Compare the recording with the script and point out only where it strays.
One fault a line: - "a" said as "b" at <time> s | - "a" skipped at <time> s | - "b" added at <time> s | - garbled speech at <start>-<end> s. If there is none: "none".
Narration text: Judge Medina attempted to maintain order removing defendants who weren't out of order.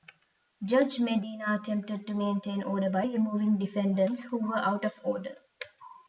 - "by" added at 2.9 s
- "weren't" said as "were" at 4.4 s